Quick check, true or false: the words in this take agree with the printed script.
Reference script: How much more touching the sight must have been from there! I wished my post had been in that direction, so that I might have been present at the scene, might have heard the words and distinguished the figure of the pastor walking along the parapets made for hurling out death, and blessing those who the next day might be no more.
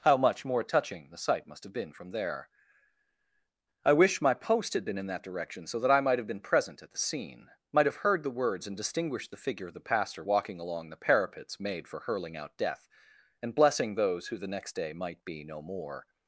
false